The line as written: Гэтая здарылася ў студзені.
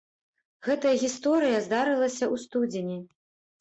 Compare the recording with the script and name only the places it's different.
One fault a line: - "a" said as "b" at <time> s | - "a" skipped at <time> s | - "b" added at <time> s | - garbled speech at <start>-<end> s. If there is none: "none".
- "гісторыя" added at 1.0 s